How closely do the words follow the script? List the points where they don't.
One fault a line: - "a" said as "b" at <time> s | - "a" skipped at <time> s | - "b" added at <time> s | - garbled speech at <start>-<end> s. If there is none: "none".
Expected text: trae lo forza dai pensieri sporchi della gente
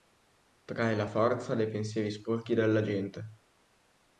- "lo" said as "la" at 0.9 s